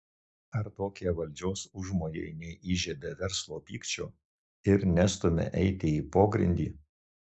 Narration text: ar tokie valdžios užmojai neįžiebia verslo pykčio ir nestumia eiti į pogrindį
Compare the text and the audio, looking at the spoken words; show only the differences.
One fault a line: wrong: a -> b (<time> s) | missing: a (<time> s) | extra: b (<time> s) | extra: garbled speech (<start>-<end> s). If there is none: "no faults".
no faults